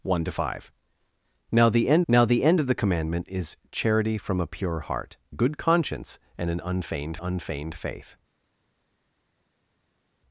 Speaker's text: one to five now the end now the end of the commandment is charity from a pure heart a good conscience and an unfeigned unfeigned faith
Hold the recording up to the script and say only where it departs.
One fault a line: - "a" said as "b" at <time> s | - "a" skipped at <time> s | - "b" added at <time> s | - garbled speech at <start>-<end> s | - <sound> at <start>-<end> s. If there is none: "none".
none